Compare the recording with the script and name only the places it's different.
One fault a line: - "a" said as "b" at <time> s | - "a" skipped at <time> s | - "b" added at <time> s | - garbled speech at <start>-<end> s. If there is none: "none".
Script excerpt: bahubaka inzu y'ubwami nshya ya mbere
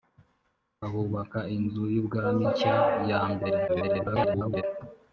- garbled speech at 3.7-4.6 s